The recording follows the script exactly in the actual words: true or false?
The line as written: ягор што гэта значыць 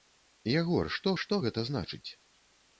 false